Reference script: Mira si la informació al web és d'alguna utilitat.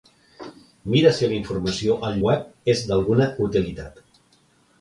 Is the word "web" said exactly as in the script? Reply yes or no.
yes